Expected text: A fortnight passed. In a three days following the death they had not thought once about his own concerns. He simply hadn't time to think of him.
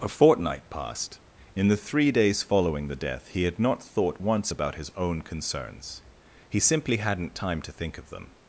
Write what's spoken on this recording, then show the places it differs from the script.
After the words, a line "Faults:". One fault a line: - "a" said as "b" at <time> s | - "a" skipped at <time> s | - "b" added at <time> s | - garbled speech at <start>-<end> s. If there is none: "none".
A fortnight passed. In the three days following the death he had not thought once about his own concerns. He simply hadn't time to think of them.
Faults:
- "a" said as "the" at 1.7 s
- "they" said as "he" at 3.3 s
- "him" said as "them" at 8.1 s